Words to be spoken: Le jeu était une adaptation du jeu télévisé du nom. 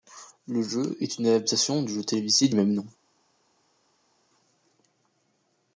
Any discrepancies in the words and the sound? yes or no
yes